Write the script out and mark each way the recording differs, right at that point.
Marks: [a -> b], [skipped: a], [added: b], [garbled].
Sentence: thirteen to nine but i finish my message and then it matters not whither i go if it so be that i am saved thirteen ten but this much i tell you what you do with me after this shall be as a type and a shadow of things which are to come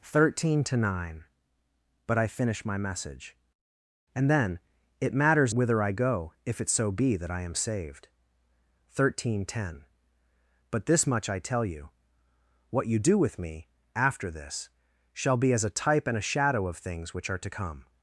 thirteen to nine but i finish my message and then it matters [skipped: not] whither i go if it so be that i am saved thirteen ten but this much i tell you what you do with me after this shall be as a type and a shadow of things which are to come